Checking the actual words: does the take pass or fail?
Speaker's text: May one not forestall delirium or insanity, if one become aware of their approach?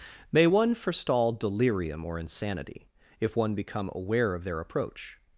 fail